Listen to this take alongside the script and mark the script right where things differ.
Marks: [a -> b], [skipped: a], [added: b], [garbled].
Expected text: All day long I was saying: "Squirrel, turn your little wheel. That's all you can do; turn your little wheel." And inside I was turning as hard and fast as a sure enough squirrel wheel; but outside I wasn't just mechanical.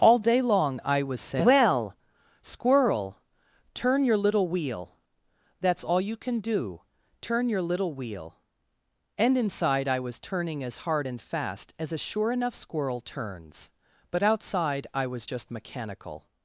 All day long I was saying: [added: Well] "Squirrel, turn your little wheel. That's all you can do; turn your little wheel." And inside I was turning as hard and fast as a sure enough squirrel [wheel; -> turns] but outside I [wasn't -> was] just mechanical.